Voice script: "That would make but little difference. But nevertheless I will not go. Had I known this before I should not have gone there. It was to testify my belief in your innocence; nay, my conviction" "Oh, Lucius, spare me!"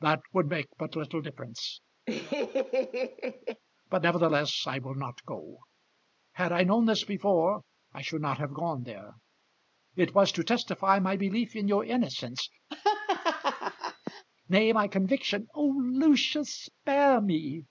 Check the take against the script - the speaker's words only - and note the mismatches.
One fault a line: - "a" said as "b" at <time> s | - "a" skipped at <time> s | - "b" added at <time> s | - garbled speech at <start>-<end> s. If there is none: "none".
none